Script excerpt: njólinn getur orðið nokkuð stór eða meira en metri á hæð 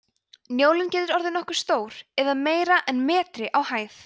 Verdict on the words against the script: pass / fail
pass